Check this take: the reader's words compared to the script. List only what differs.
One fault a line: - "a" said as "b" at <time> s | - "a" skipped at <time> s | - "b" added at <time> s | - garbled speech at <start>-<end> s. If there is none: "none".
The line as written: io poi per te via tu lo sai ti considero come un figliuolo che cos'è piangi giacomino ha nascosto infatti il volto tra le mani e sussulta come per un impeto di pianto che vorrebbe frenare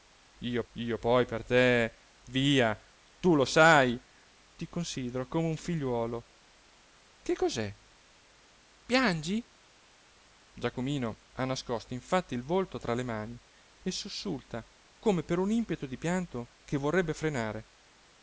- "io" added at 0.7 s